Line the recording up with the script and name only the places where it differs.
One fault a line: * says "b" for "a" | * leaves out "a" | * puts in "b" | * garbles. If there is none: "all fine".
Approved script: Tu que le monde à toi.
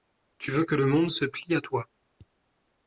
* puts in "veux"
* puts in "se plie"